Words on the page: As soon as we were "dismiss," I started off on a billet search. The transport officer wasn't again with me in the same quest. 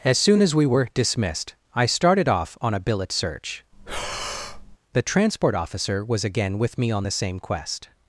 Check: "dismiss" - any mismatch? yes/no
yes